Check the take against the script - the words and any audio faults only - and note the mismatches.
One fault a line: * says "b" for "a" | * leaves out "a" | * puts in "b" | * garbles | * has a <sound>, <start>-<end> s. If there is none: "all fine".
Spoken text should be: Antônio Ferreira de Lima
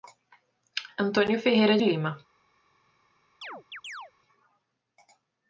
* leaves out "de"
* has a chirp, 3.4-4.1 s